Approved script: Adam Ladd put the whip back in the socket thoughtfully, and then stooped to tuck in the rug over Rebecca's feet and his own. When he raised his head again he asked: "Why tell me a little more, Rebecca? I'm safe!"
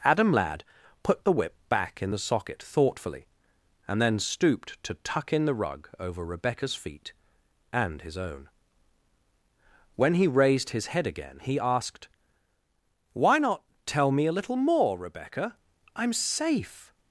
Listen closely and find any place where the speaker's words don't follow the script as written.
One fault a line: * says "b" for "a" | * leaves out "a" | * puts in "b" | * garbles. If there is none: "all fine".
* puts in "not"